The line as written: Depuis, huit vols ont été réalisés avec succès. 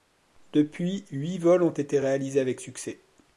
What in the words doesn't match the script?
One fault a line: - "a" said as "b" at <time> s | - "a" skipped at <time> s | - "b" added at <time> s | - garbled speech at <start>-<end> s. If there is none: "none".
none